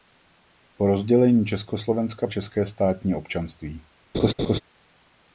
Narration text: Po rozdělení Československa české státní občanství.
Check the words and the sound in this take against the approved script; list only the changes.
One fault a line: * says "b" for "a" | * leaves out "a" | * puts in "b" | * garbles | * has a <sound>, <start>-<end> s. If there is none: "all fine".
* has a laugh, 4.1-4.6 s